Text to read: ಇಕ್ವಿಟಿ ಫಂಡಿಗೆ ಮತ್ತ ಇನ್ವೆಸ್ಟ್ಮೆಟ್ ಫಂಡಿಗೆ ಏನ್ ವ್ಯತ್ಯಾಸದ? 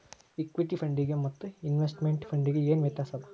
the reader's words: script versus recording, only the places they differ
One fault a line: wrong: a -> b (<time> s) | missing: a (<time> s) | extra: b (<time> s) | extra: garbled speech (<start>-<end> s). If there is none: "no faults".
no faults